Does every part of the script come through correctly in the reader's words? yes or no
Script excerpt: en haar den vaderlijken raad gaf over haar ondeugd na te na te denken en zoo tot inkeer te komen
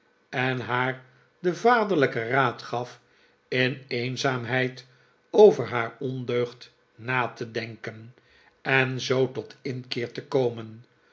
no